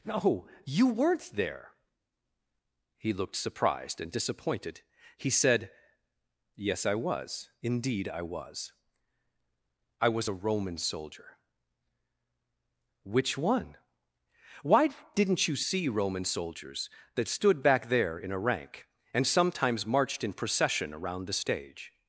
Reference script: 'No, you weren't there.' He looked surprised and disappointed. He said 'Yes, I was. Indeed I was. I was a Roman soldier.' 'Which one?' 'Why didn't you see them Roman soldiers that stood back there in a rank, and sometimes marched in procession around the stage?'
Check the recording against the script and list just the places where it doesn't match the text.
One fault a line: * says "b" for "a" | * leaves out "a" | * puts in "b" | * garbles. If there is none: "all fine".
* leaves out "them"